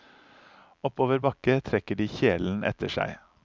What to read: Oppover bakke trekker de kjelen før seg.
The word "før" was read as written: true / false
false